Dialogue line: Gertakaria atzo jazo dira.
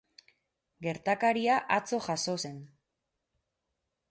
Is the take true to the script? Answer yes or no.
no